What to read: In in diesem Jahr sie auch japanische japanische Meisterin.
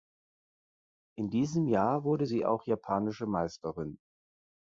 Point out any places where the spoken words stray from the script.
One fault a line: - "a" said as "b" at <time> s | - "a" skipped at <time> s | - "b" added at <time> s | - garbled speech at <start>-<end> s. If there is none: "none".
- "in" skipped at 1.3 s
- "wurde" added at 2.0 s
- "japanische" skipped at 3.3 s